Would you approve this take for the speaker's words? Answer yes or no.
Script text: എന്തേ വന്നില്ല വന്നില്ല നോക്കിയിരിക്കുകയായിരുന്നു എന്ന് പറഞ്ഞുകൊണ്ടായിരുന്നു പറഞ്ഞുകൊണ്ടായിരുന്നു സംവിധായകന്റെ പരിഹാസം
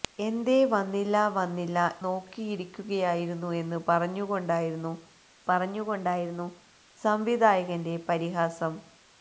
yes